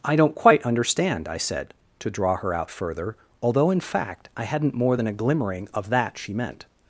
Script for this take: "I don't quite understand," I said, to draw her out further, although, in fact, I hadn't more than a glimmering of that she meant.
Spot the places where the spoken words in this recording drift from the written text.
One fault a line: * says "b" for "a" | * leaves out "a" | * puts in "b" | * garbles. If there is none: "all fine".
all fine